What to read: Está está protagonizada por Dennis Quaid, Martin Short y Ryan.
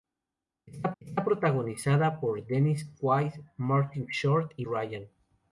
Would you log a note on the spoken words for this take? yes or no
no